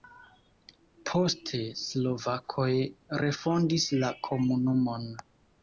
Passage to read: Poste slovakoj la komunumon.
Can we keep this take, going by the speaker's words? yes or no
no